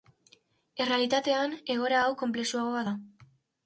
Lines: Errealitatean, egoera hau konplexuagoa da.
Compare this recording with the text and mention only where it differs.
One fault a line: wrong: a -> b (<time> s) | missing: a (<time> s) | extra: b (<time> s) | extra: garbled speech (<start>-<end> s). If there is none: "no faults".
no faults